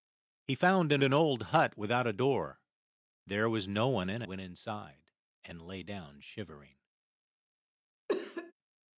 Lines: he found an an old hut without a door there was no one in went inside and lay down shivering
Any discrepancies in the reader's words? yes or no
no